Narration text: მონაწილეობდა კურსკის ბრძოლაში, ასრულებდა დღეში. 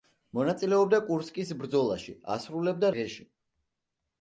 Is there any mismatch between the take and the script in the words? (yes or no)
no